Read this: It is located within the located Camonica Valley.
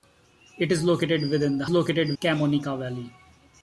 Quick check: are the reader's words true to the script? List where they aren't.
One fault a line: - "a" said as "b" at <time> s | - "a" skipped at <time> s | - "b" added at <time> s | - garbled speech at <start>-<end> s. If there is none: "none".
none